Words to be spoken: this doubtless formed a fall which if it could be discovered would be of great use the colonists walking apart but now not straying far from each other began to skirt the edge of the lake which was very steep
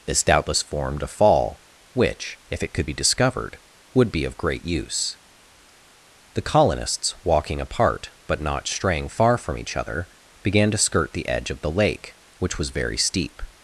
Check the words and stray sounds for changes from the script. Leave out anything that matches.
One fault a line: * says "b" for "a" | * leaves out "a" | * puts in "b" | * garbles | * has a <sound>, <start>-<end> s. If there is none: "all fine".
* leaves out "now"